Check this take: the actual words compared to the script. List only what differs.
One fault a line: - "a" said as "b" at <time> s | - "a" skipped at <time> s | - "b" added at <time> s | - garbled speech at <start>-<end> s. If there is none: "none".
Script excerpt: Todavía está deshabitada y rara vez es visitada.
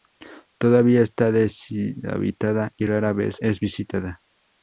none